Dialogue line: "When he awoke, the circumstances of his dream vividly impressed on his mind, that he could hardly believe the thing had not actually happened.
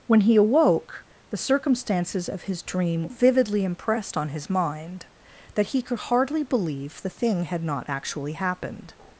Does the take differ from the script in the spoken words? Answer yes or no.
no